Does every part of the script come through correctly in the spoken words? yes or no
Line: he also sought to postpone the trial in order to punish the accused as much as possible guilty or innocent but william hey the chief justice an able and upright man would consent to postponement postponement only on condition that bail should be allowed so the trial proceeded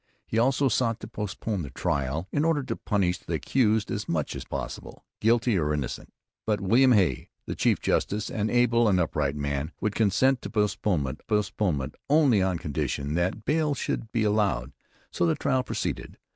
yes